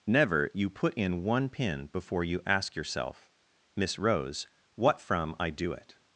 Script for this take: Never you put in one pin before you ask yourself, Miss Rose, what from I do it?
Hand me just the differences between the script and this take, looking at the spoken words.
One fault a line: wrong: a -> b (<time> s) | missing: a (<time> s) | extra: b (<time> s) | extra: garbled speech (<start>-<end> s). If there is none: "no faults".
no faults